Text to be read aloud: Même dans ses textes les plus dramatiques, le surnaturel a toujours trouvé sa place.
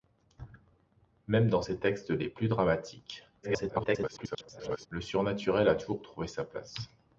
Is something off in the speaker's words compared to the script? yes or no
yes